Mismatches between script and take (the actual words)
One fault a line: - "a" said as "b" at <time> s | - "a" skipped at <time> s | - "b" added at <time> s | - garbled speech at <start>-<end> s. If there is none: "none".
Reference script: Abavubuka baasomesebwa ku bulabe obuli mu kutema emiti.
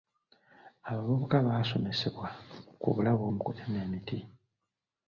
- "obuli" skipped at 3.2 s